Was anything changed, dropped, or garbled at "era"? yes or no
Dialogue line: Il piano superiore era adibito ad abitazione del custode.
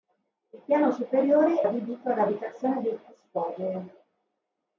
yes